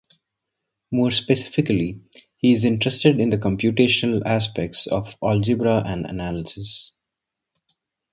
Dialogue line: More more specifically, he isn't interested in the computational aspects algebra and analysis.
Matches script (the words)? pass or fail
fail